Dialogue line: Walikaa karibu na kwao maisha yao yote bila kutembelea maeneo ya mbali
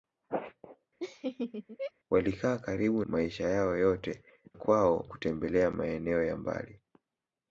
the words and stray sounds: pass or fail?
fail